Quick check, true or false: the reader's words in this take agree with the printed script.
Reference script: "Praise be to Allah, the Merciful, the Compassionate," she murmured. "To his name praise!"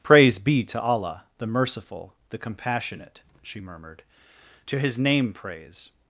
true